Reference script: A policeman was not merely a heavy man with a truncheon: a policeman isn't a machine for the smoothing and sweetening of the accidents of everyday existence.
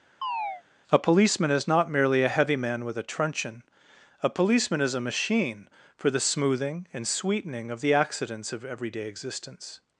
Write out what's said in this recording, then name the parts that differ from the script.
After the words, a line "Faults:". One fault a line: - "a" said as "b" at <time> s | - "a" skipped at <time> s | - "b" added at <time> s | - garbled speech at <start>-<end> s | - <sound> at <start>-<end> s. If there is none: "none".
A policeman is not merely a heavy man with a truncheon: a policeman is a machine for the smoothing and sweetening of the accidents of everyday existence.
Faults:
- chirp at 0.2-0.6 s
- "was" said as "is" at 1.5 s
- "isn't" said as "is" at 4.8 s